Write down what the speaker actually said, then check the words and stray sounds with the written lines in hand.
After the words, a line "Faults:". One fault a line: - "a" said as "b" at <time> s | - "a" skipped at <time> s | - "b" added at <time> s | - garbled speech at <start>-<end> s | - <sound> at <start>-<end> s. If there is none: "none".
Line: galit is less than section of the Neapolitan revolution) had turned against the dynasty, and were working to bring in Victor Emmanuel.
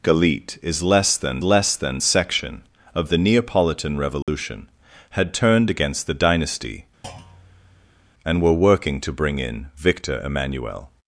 galit is less than less than section of the Neapolitan revolution) had turned against the dynasty, and were working to bring in Victor Emmanuel.
Faults:
- "less than" added at 1.4 s
- dropout at 4.2-4.3 s
- thud at 7.0-8.1 s